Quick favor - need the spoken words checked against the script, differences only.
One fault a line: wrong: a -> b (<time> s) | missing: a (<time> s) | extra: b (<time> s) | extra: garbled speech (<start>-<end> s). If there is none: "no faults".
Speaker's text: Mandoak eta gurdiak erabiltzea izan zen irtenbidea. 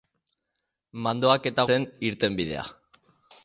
missing: gurdiak erabiltzea izan (1.6 s)